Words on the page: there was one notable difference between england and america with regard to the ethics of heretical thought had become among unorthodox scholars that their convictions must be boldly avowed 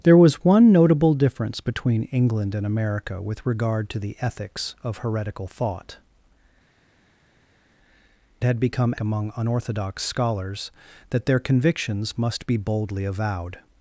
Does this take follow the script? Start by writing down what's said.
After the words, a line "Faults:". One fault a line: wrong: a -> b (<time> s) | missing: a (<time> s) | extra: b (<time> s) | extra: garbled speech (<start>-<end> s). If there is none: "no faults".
there was one notable difference between england and america with regard to the ethics of heretical thought had become among unorthodox scholars that their convictions must be boldly avowed
Faults:
no faults